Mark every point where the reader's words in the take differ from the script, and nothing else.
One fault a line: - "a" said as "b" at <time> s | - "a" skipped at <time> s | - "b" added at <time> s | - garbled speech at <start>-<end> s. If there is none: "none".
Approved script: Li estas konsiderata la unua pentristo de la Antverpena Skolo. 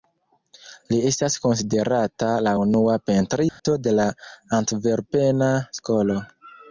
none